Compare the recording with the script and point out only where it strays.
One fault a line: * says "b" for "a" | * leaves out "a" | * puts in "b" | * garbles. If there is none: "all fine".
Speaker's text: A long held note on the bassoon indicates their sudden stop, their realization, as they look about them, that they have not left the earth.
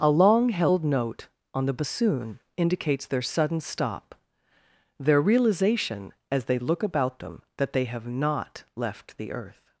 all fine